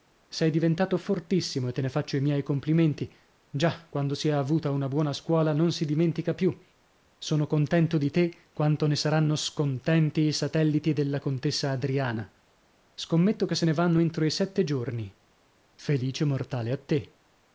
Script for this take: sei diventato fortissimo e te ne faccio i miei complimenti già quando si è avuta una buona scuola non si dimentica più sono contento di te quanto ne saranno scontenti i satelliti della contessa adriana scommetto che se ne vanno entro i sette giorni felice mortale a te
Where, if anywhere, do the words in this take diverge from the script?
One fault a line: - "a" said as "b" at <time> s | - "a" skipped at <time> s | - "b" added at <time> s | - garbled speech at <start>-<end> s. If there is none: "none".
none